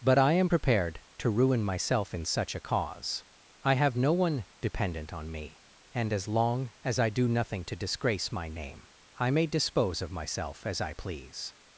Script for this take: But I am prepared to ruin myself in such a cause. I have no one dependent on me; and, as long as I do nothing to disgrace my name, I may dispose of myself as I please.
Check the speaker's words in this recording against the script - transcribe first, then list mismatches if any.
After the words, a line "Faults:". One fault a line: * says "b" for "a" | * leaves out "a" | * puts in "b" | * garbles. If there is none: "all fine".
But I am prepared to ruin myself in such a cause. I have no one dependent on me; and, as long as I do nothing to disgrace my name, I may dispose of myself as I please.
Faults:
all fine